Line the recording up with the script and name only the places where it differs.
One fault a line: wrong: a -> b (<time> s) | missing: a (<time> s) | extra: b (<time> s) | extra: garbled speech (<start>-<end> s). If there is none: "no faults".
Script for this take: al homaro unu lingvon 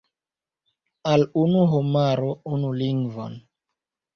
extra: unu (1.4 s)